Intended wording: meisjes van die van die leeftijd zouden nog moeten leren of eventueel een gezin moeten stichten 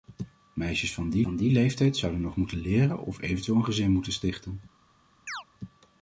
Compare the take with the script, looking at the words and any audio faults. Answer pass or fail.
fail